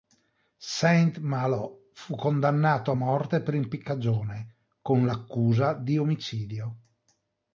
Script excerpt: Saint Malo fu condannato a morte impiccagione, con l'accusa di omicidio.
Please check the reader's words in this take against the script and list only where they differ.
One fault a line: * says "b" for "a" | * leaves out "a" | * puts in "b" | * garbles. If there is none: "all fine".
* puts in "per"